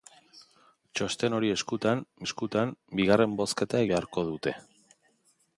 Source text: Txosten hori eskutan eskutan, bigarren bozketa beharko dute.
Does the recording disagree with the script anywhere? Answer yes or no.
no